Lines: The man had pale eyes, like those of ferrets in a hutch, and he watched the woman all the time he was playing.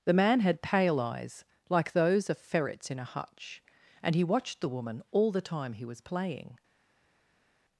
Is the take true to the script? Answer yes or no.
yes